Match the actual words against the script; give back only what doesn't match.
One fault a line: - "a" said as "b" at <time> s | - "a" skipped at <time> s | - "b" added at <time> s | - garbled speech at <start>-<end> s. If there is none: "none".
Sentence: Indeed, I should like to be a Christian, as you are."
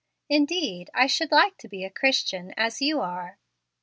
none